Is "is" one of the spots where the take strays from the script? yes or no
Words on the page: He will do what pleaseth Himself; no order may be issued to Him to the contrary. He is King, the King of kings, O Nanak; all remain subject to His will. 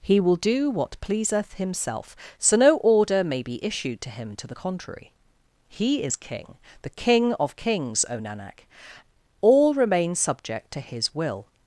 no